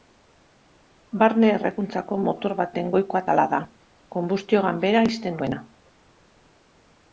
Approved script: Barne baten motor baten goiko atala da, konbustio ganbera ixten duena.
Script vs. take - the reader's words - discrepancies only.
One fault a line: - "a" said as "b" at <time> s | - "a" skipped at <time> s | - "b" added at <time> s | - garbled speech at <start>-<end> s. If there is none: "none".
- "baten" said as "errekuntzako" at 1.6 s